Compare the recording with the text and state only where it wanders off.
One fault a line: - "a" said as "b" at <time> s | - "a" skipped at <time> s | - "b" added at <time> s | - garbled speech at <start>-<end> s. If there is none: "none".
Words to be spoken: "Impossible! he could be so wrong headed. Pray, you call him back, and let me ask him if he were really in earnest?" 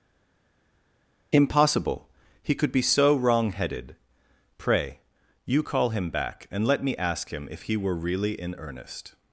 none